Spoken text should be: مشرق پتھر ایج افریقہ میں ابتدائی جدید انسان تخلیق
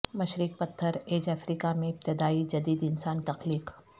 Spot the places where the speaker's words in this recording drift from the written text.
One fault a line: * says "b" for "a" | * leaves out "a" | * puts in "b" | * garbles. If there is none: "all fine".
all fine